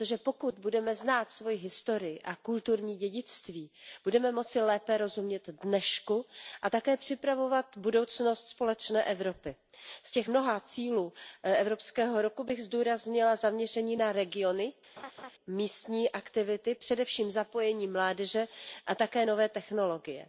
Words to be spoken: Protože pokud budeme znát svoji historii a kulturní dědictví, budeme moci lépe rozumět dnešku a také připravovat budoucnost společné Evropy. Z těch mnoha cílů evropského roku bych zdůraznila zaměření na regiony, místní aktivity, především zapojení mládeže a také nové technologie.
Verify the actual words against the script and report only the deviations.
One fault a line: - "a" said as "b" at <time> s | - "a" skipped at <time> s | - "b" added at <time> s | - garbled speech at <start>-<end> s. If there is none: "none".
none